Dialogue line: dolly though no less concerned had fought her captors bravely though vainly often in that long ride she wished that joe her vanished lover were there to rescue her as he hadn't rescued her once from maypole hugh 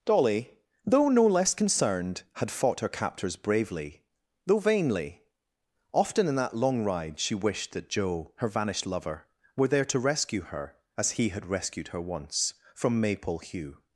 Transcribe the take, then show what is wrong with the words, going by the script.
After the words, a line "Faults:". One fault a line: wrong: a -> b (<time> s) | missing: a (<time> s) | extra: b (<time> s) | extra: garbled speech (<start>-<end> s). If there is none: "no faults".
dolly though no less concerned had fought her captors bravely though vainly often in that long ride she wished that joe her vanished lover were there to rescue her as he had rescued her once from maypole hugh
Faults:
wrong: hadn't -> had (11.3 s)